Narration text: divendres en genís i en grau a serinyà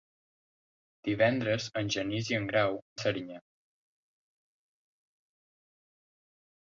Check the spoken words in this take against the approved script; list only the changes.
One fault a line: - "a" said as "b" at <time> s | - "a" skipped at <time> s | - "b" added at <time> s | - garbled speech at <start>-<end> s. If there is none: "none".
none